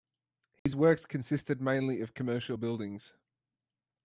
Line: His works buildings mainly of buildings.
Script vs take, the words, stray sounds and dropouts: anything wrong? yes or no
yes